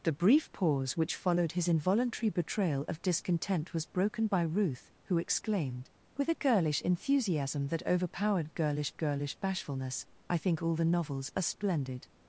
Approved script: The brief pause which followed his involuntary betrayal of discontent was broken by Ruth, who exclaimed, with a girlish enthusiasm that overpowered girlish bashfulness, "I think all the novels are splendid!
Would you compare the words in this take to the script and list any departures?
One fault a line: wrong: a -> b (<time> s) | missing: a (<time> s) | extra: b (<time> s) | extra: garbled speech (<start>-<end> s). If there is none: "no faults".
extra: girlish (9.0 s)